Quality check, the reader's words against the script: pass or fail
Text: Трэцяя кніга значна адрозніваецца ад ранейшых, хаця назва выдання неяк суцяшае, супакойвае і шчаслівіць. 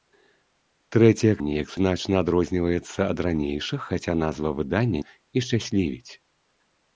fail